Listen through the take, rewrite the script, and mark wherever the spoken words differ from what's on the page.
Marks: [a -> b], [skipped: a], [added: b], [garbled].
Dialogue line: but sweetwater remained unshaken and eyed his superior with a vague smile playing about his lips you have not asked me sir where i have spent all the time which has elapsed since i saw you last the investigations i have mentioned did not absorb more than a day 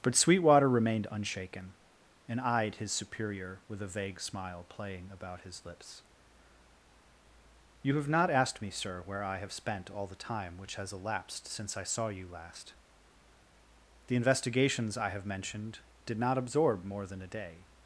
but sweetwater remained unshaken and eyed his superior with a vague smile playing about his lips you have not asked me sir where i have spent all the time which has elapsed since i saw you last the investigations i have mentioned did not absorb more than a day